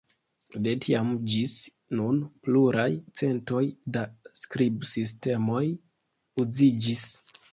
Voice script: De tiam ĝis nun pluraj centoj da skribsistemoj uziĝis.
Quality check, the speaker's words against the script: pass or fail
pass